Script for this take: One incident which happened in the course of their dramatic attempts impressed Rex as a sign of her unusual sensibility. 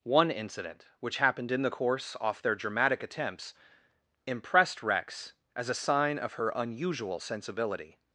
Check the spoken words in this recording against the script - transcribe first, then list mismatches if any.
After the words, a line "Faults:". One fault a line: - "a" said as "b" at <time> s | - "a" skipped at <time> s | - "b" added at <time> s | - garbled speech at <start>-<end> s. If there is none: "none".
One incident which happened in the course off their dramatic attempts impressed Rex as a sign of her unusual sensibility.
Faults:
- "of" said as "off" at 2.2 s